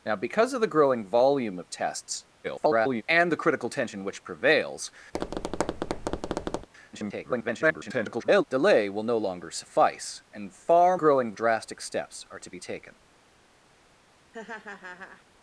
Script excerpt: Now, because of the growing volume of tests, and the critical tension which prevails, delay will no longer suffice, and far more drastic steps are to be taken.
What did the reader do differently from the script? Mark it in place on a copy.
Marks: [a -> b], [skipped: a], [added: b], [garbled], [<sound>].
Now, because of the growing volume of tests, [garbled] and the critical tension which prevails, [tap] [garbled] delay will no longer suffice, and far [more -> growing] drastic steps are to be taken. [laugh]